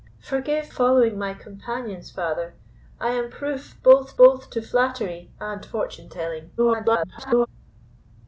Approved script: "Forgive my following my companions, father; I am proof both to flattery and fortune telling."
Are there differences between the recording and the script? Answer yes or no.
yes